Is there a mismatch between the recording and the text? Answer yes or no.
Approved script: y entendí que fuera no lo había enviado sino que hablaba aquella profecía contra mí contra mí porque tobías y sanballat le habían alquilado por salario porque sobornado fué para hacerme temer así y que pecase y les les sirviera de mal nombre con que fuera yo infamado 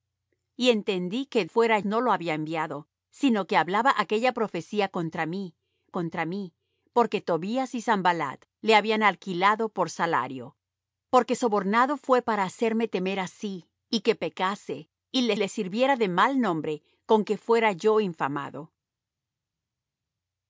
no